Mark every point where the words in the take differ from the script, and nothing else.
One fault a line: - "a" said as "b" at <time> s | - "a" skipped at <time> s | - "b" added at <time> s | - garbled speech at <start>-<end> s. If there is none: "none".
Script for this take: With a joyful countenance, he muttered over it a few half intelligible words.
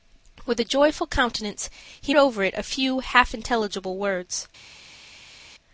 - "muttered" skipped at 2.1 s